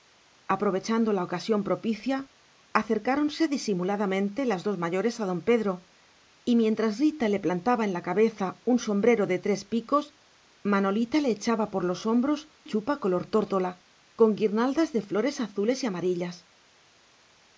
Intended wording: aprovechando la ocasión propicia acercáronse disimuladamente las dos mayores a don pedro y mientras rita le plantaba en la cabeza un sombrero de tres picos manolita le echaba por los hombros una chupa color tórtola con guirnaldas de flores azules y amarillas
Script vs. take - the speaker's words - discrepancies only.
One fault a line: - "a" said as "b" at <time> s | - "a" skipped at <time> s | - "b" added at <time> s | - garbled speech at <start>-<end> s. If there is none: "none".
- "una" skipped at 12.5 s